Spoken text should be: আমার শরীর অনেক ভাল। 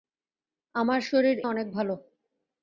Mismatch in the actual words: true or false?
false